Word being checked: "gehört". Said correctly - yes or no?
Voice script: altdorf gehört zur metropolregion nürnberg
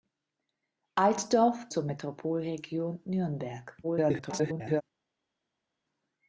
no